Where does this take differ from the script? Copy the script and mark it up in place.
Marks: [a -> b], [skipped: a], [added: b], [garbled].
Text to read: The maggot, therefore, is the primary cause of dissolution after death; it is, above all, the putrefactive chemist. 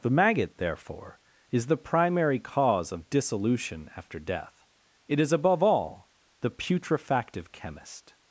The maggot, therefore, is the primary cause of dissolution after death; it is, above all, the putrefactive chemist.